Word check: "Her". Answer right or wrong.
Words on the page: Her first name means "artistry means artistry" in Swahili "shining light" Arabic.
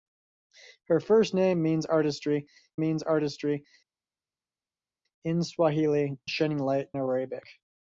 right